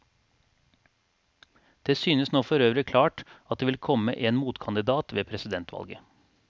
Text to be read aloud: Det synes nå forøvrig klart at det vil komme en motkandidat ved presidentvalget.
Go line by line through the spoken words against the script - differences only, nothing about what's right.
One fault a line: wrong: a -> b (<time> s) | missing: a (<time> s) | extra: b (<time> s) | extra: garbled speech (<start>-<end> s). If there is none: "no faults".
no faults